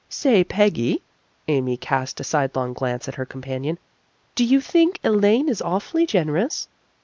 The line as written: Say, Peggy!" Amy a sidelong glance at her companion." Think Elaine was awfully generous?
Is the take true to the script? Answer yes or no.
no